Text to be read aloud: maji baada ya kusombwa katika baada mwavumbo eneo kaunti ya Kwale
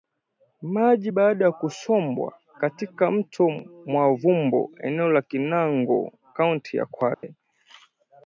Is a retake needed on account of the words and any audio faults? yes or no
yes